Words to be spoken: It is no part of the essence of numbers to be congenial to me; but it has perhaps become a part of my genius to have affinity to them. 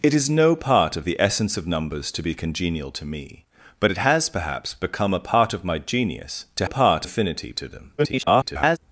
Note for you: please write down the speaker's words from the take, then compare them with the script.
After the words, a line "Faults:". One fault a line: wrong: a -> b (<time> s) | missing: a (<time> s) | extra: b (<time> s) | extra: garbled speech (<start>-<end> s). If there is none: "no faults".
It is no part of the essence of numbers to be congenial to me; but it has perhaps become a part of my genius to part affinity to them. [garbled]
Faults:
wrong: have -> part (6.6 s)
extra: garbled speech (8.0-8.8 s)